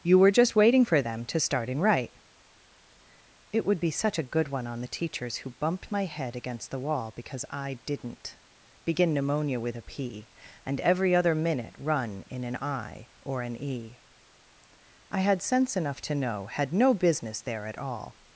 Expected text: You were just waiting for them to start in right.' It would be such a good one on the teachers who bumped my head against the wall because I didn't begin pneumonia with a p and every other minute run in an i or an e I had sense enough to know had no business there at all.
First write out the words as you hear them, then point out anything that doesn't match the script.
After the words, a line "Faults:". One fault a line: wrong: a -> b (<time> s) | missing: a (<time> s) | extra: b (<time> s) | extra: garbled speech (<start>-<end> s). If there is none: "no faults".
You were just waiting for them to start in right.' It would be such a good one on the teachers who bumped my head against the wall because I didn't begin pneumonia with a p and every other minute run in an i or an e I had sense enough to know had no business there at all.
Faults:
no faults